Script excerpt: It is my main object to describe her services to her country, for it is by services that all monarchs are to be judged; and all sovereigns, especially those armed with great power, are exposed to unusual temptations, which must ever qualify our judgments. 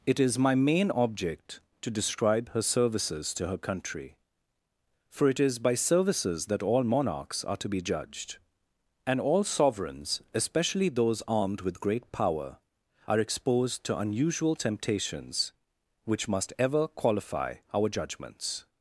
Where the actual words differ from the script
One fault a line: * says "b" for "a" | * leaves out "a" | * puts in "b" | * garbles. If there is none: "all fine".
all fine